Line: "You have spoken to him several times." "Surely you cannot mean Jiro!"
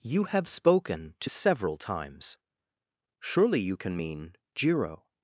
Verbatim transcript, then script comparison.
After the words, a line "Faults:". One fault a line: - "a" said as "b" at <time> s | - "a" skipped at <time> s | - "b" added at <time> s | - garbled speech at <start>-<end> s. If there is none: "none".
"You have spoken to several times." "Surely you can mean Jiro!"
Faults:
- "him" skipped at 1.3 s
- "cannot" said as "can" at 3.8 s